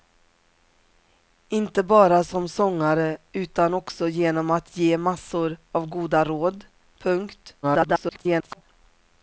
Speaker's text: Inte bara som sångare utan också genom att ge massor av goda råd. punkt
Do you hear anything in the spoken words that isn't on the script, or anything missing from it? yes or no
yes